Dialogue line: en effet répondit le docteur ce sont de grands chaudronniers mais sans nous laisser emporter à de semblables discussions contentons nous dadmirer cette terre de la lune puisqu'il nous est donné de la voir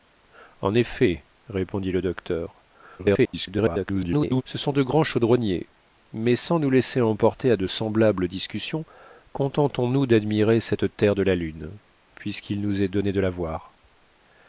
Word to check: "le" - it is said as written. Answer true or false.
true